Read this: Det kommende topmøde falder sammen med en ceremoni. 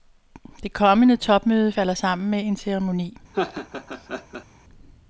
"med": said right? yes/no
yes